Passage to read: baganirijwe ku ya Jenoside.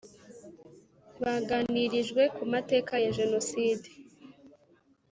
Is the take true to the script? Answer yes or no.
no